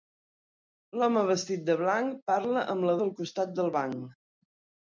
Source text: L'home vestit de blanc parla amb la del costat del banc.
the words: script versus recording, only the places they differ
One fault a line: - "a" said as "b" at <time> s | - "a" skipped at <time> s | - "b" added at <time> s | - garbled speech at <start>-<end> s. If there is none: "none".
none